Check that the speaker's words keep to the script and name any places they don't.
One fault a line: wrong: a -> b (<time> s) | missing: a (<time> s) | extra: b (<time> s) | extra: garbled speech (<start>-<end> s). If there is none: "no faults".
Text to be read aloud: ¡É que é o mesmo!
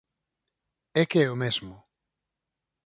no faults